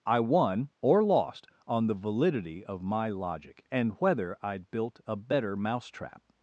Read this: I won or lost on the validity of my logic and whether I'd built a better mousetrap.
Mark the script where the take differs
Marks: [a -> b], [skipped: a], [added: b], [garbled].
I won or lost on the validity of my logic and whether I'd built a better mousetrap.